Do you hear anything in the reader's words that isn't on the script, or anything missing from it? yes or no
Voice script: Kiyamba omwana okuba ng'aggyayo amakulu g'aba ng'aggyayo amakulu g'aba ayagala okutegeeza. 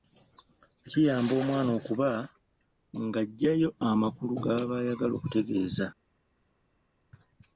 yes